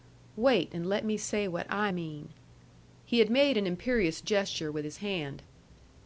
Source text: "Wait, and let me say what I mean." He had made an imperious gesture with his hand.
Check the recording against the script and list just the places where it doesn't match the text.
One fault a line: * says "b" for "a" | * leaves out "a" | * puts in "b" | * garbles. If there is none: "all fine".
all fine